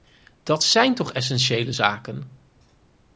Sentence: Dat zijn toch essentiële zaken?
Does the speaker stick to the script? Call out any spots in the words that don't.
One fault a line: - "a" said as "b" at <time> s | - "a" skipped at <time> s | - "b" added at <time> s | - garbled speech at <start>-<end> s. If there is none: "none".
none